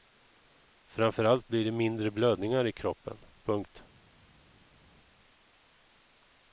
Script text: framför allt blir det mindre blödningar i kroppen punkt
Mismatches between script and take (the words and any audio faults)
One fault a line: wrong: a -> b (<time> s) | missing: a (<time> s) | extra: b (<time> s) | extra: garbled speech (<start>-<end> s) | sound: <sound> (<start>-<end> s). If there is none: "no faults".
no faults